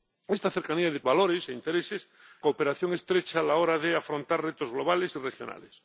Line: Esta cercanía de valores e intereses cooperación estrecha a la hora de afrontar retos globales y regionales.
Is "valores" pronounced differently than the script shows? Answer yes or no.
no